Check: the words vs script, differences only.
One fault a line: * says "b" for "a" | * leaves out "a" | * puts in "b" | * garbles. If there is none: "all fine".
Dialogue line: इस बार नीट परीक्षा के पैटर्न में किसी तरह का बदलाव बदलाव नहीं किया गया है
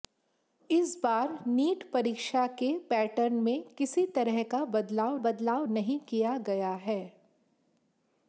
all fine